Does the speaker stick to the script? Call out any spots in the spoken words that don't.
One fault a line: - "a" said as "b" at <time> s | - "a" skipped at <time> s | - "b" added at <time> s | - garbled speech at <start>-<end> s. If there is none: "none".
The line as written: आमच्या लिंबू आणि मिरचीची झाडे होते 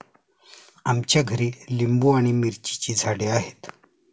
- "घरी" added at 1.2 s
- "होते" said as "आहेत" at 3.3 s